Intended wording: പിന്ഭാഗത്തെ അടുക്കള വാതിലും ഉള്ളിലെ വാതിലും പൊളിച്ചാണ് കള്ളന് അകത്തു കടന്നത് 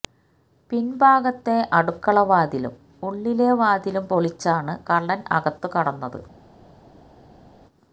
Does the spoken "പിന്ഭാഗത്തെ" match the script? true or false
true